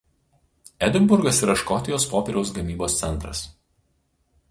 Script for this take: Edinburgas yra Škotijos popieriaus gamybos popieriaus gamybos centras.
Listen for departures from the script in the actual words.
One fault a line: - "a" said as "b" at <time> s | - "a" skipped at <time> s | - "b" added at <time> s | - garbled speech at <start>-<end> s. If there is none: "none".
- "popieriaus gamybos" skipped at 2.9 s